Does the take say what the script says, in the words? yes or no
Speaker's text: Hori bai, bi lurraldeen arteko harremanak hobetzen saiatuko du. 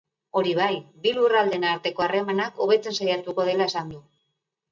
no